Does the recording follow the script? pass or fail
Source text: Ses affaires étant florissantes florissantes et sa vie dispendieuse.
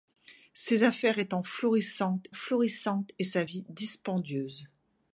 pass